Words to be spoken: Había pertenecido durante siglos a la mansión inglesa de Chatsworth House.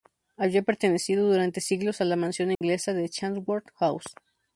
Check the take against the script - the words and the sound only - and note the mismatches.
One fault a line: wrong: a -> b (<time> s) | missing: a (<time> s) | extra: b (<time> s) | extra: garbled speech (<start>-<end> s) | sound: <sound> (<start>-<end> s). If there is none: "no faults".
sound: dropout (2.5-2.6 s)